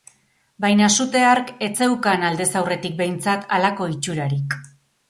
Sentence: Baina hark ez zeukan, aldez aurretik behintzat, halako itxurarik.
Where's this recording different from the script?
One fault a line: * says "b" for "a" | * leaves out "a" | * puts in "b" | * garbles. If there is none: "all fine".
* puts in "sute"